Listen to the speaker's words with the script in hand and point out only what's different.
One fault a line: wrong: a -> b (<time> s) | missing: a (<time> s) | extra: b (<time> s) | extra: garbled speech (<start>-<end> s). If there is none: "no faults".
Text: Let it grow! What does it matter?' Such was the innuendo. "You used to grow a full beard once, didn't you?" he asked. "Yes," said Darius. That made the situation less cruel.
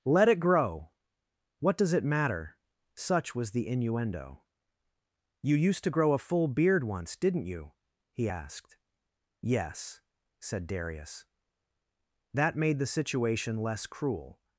no faults